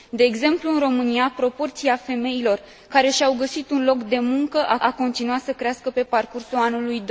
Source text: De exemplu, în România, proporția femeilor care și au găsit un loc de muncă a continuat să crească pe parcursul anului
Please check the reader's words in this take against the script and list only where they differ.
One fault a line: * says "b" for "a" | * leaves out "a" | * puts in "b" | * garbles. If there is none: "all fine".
* puts in "a"